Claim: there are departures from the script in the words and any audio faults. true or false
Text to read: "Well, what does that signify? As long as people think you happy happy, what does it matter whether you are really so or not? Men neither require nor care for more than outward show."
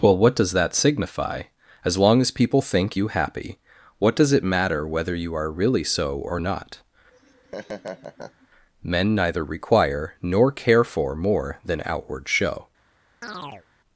true